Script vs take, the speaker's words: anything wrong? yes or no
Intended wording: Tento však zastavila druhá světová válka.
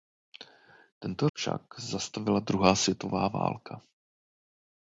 no